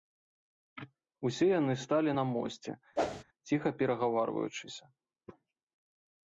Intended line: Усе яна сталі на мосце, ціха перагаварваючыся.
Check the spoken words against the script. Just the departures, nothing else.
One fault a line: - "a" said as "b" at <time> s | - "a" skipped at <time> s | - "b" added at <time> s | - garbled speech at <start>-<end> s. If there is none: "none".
- "яна" said as "яны" at 1.6 s